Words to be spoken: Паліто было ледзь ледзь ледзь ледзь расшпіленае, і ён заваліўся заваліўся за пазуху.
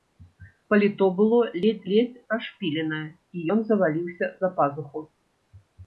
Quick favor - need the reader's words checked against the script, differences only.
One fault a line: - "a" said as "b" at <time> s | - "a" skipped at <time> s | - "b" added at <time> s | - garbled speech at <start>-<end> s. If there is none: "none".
- "ледзь ледзь" skipped at 2.2 s
- "заваліўся" skipped at 4.3 s